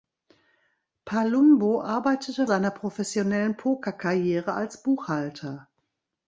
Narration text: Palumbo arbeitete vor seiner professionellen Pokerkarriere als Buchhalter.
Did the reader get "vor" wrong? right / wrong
wrong